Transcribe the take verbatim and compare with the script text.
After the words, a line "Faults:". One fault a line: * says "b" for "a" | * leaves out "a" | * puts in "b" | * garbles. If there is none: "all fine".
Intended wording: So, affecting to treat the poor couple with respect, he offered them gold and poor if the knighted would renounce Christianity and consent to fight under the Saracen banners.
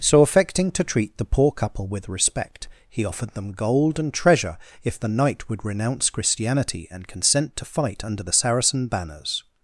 So, affecting to treat the poor couple with respect, he offered them gold and treasure if the knight would renounce Christianity and consent to fight under the Saracen banners.
Faults:
* says "treasure" for "poor"
* says "knight" for "knighted"